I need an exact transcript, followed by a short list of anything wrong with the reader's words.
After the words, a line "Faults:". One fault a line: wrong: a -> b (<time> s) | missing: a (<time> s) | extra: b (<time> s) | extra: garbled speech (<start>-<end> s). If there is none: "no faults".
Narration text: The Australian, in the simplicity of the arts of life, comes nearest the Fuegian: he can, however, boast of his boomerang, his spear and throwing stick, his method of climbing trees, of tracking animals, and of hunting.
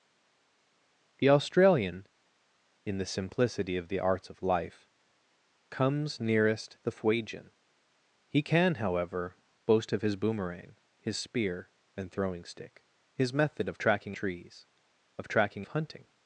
The Australian, in the simplicity of the arts of life, comes nearest the Fuegian: he can, however, boast of his boomerang, his spear and throwing stick, his method of tracking trees, of tracking of hunting.
Faults:
wrong: climbing -> tracking (13.8 s)
missing: animals and (15.7 s)